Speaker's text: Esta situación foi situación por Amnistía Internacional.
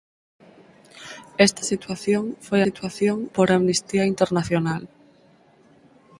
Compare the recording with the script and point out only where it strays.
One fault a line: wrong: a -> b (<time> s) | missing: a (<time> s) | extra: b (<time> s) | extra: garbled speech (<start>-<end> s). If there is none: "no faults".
no faults